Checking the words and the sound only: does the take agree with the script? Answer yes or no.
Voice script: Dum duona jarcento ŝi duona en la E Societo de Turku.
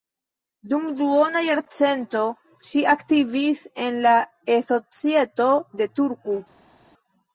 no